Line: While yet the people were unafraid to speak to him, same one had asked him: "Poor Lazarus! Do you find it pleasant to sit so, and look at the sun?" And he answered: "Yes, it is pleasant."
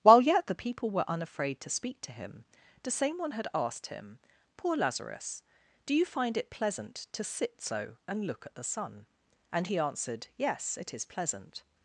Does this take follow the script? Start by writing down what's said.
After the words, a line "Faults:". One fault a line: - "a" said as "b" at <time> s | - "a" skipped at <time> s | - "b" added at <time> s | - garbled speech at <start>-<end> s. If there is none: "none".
While yet the people were unafraid to speak to him, the same one had asked him: "Poor Lazarus! Do you find it pleasant to sit so, and look at the sun?" And he answered: "Yes, it is pleasant."
Faults:
- "the" added at 2.8 s